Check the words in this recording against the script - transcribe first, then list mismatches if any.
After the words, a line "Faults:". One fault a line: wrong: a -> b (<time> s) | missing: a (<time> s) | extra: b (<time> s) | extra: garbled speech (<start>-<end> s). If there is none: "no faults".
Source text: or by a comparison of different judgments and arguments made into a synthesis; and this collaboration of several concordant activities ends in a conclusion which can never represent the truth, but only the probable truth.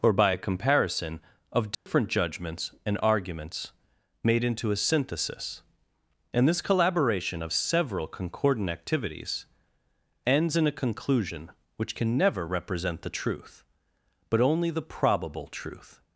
or by a comparison of different judgments and arguments made into a synthesis; and this collaboration of several concordant activities ends in a conclusion which can never represent the truth, but only the probable truth.
Faults:
no faults